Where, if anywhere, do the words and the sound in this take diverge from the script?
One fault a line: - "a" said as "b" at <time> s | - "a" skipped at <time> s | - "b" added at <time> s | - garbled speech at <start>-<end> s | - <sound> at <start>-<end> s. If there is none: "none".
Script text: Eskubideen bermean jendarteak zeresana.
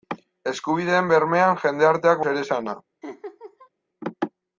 - laugh at 3.0-3.7 s